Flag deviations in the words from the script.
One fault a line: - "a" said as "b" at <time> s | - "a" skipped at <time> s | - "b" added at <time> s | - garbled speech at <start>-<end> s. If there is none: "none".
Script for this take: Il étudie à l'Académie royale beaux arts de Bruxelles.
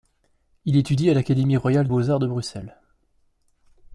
none